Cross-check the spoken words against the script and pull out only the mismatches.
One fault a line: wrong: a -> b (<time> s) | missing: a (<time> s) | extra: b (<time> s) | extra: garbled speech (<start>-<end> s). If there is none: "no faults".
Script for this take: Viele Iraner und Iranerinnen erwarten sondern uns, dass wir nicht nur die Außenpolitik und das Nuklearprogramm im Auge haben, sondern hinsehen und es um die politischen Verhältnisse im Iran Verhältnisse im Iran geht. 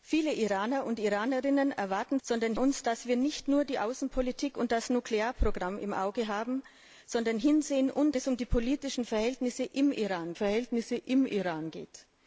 no faults